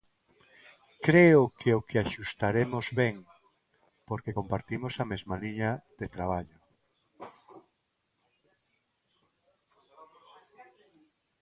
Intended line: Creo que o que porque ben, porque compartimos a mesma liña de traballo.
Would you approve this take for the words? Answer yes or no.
no